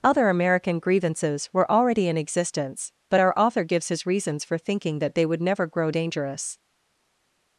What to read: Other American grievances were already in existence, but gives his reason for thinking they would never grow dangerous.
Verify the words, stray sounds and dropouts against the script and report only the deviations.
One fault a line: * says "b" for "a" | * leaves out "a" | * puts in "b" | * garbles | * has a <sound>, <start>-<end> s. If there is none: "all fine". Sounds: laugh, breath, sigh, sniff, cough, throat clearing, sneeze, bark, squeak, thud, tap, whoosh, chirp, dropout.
* puts in "our author"
* says "reasons" for "reason"
* puts in "that"